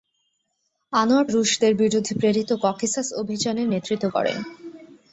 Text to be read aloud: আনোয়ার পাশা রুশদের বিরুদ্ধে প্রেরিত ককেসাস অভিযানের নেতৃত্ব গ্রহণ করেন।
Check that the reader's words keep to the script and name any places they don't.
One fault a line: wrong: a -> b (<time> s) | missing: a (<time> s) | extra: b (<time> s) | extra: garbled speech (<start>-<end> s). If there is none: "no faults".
missing: পাশা (1.2 s)
missing: গ্রহণ (4.1 s)